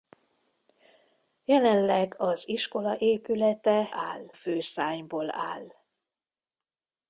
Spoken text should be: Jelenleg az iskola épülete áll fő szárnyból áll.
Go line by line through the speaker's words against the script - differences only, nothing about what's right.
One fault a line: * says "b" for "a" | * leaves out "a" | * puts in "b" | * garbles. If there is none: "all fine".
all fine